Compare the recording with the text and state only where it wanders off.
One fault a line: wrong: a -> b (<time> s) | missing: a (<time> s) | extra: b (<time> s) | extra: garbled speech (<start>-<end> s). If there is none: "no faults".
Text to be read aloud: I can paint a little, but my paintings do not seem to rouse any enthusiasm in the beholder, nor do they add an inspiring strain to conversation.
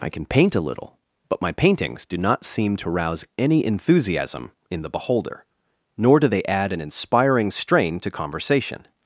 no faults